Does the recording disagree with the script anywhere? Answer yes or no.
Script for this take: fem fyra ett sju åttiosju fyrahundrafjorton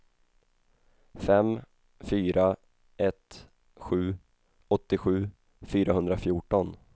no